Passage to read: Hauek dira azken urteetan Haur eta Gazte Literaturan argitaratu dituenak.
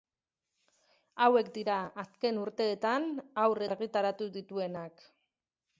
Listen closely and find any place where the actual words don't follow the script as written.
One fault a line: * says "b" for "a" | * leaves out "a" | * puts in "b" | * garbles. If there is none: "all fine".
* leaves out "eta Gazte Literaturan"